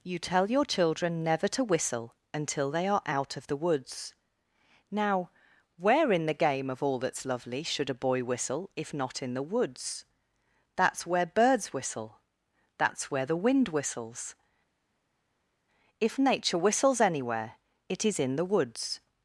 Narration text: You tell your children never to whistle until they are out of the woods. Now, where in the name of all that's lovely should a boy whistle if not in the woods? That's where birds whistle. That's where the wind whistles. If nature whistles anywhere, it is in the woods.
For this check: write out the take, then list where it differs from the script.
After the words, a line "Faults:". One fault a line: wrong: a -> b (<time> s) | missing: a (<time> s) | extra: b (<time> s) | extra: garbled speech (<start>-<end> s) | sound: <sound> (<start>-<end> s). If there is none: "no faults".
You tell your children never to whistle until they are out of the woods. Now, where in the game of all that's lovely should a boy whistle if not in the woods? That's where birds whistle. That's where the wind whistles. If nature whistles anywhere, it is in the woods.
Faults:
wrong: name -> game (6.3 s)